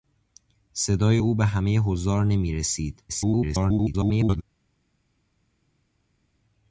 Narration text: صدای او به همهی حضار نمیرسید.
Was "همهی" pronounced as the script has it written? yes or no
yes